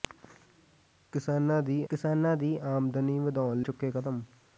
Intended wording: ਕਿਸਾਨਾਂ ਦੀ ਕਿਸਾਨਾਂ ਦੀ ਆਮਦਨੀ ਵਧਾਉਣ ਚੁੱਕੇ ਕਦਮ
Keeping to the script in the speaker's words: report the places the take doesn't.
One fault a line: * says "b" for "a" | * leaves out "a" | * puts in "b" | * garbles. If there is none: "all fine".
all fine